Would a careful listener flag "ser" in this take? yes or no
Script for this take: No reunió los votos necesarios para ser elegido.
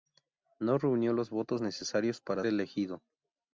yes